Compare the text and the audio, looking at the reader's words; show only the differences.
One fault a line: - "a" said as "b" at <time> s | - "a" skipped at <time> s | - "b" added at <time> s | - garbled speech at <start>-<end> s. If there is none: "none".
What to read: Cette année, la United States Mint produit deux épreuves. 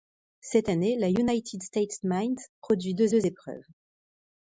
- "deux" added at 3.1 s